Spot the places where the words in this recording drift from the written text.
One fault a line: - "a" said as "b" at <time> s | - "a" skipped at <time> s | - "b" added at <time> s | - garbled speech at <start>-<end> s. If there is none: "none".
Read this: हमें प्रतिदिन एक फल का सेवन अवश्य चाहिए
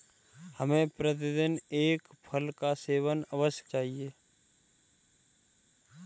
none